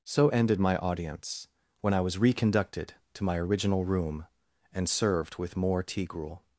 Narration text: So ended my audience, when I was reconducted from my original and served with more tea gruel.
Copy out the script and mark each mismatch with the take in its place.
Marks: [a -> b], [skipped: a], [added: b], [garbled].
So ended my audience, when I was reconducted [from -> to] my original [added: room] and served with more tea gruel.